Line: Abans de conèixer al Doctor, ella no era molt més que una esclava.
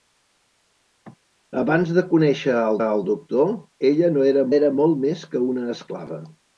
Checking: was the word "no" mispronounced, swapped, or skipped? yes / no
no